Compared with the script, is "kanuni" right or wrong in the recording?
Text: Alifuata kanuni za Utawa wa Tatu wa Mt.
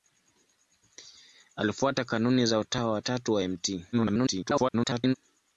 right